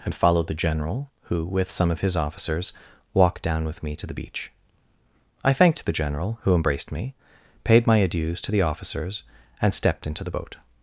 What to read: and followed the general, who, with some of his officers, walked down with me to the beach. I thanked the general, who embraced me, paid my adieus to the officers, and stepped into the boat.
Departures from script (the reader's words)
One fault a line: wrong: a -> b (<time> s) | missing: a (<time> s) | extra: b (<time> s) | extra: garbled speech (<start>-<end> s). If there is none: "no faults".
no faults